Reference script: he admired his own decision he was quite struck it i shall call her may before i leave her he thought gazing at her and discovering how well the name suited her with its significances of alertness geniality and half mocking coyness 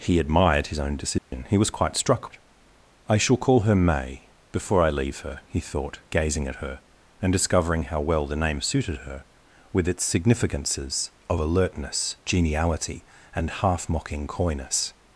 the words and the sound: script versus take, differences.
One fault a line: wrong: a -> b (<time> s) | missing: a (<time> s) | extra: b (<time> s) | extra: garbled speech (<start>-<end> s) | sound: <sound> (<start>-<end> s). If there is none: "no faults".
sound: dropout (1.2-1.3 s)